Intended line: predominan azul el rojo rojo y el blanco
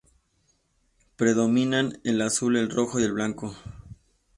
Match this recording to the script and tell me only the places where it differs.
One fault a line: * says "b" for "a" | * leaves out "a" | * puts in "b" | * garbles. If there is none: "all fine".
* puts in "el"
* leaves out "rojo"